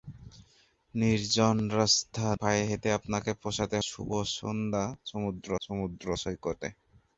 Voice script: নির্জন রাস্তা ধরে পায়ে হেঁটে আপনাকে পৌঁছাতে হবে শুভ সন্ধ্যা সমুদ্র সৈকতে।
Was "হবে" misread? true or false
true